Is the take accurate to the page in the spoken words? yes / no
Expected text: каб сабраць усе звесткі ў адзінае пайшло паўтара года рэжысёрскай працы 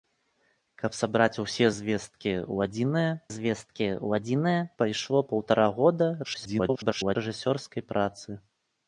no